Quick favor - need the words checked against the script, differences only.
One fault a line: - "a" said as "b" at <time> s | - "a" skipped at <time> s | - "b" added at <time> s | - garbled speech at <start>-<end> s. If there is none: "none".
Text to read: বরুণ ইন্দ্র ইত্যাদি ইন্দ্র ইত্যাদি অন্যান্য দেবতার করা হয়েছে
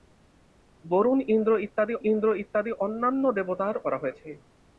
none